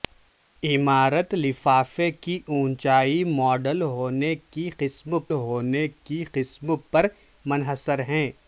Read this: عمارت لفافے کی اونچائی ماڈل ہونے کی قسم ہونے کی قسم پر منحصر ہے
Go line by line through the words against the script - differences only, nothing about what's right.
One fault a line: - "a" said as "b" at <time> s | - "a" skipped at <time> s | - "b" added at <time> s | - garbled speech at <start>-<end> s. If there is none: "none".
none